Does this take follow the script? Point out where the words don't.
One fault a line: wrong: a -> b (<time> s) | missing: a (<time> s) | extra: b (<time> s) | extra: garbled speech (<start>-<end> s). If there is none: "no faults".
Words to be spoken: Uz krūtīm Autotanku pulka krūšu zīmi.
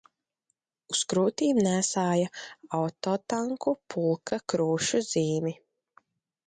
extra: nēsāja (1.7 s)